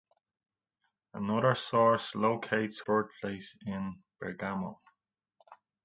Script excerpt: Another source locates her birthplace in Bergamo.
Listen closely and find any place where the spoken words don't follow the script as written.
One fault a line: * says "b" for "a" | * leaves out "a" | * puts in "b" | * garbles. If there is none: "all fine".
* leaves out "her"